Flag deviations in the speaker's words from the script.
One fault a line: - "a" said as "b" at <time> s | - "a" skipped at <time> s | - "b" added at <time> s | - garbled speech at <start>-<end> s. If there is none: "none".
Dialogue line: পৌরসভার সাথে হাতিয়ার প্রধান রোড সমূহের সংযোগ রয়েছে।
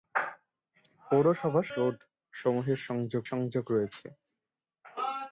- "সাথে হাতিয়ার প্রধান" skipped at 1.7 s
- "সংযোগ" added at 3.3 s